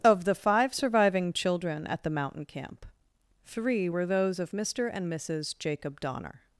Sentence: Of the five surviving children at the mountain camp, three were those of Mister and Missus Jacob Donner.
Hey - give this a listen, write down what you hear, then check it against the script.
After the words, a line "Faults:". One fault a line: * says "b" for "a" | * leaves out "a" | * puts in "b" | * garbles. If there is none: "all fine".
Of the five surviving children at the mountain camp, three were those of Mister and Missus Jacob Donner.
Faults:
all fine